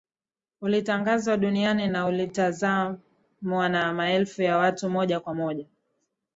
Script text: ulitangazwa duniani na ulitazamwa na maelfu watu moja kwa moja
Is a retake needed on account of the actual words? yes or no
yes